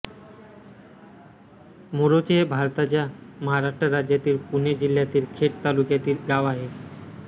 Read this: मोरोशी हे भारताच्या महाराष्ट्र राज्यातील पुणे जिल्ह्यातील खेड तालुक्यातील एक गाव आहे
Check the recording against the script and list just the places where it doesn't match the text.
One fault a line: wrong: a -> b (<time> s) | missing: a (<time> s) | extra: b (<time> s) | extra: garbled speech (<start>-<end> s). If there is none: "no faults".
missing: एक (6.3 s)